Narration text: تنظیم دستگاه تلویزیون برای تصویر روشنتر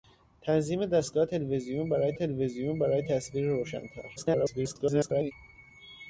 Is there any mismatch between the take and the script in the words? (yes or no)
yes